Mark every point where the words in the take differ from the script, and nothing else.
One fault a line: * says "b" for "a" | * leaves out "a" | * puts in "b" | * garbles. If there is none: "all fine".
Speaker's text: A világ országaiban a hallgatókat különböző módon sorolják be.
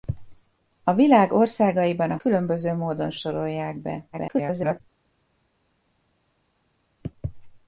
* leaves out "hallgatókat"
* garbles